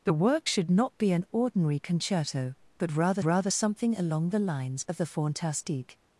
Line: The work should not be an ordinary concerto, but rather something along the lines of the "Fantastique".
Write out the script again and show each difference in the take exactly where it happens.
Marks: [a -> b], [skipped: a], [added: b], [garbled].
The work should not be an ordinary concerto, but rather [added: rather] something along the lines of the "Fantastique".